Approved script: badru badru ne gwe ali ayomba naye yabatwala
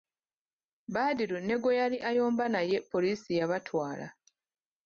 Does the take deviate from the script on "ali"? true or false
true